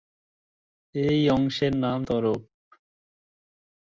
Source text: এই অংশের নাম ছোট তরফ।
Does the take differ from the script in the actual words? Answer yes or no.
yes